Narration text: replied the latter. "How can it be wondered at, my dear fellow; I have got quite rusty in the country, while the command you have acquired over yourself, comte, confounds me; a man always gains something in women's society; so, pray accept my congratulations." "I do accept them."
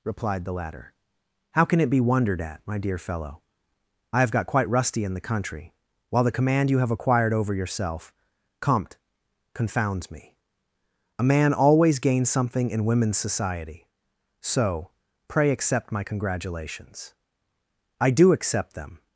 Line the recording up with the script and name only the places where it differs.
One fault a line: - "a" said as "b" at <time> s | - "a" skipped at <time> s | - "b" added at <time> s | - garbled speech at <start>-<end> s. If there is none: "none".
none